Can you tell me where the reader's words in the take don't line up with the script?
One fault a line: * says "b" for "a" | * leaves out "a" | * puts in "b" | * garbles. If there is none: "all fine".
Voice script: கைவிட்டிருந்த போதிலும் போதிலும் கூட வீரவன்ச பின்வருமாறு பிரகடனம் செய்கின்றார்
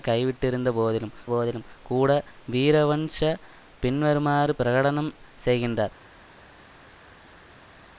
all fine